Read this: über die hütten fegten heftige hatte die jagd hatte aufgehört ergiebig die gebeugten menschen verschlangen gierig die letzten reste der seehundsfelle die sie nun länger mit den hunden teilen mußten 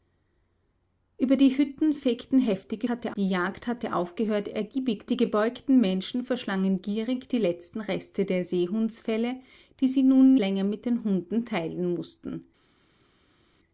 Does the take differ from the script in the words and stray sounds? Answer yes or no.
no